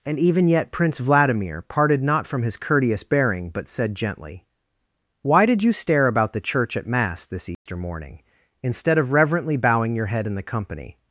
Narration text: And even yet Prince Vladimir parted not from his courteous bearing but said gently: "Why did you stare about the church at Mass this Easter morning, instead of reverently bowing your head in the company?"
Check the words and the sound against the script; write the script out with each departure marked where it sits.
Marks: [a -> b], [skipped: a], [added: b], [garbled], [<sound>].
And even yet Prince Vladimir parted not from his courteous bearing but said gently: "Why did you stare about the church at Mass this Easter [dropout] morning, instead of reverently bowing your head in the company?"